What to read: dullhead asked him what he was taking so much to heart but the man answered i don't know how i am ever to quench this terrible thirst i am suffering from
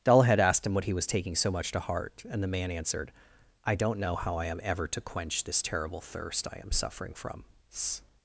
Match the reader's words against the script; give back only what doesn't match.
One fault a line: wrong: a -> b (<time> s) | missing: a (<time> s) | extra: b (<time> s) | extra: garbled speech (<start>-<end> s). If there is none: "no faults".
wrong: but -> and (2.3 s)